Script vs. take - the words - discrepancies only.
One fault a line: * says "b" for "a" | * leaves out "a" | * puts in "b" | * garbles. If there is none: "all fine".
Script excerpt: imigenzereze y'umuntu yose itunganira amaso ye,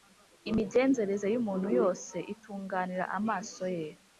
all fine